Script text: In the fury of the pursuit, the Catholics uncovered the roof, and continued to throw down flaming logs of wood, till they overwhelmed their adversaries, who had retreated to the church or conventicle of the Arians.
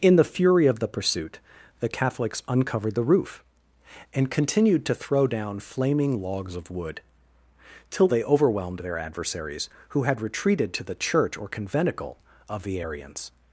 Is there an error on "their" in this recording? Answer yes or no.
no